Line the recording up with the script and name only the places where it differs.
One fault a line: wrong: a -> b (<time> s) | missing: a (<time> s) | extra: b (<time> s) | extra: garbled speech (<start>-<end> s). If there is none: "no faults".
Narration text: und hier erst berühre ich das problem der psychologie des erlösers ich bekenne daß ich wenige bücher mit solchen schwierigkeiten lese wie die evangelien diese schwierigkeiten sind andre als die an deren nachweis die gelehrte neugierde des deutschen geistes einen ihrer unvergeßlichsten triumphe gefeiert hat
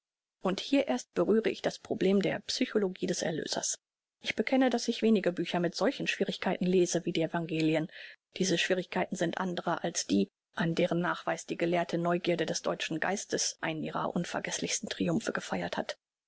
no faults